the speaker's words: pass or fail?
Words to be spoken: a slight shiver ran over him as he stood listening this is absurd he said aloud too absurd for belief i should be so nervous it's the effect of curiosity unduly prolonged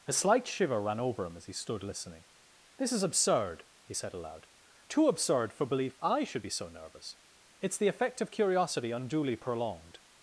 pass